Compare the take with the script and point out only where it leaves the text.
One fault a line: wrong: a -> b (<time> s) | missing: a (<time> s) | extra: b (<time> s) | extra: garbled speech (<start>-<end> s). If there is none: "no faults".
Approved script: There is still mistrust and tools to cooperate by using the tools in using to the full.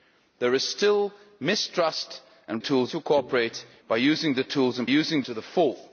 no faults